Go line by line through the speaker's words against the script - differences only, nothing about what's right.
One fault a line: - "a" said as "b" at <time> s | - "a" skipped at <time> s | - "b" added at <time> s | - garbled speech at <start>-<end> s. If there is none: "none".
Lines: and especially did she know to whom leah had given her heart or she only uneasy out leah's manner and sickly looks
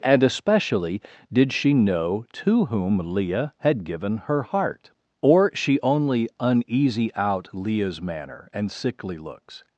none